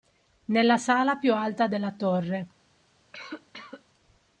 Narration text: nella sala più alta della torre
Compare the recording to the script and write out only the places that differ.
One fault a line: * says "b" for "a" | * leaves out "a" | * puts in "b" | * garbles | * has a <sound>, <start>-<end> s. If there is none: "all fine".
* has a cough, 3.1-3.8 s